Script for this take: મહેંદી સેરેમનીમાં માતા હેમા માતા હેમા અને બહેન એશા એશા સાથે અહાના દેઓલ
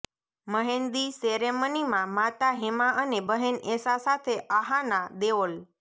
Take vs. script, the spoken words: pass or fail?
fail